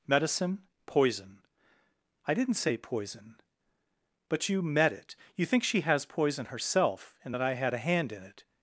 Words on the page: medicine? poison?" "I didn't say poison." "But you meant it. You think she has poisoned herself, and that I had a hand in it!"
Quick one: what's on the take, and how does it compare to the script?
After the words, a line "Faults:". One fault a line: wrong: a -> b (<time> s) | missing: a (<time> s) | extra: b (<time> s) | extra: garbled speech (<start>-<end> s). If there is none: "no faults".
medicine? poison?" "I didn't say poison." "But you met it. You think she has poison herself, and that I had a hand in it!"
Faults:
wrong: meant -> met (4.6 s)
wrong: poisoned -> poison (6.0 s)